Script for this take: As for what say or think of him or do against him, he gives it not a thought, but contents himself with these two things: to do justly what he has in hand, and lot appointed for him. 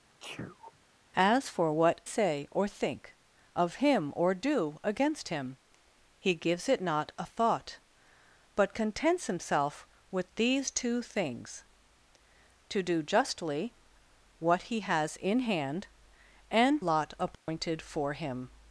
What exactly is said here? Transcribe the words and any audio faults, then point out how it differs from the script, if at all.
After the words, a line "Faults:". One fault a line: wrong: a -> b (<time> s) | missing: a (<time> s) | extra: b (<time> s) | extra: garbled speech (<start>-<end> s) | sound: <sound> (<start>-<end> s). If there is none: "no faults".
As for what say or think of him or do against him, he gives it not a thought, but contents himself with these two things: to do justly what he has in hand, and lot appointed for him.
Faults:
sound: sneeze (0.2-0.8 s)
sound: dropout (17.3-17.5 s)